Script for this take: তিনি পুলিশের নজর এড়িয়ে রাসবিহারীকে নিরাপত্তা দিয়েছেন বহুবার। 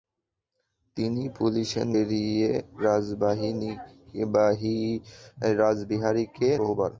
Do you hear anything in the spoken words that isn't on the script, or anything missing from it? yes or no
yes